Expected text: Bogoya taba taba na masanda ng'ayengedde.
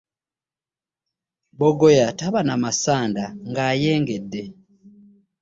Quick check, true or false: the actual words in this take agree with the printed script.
false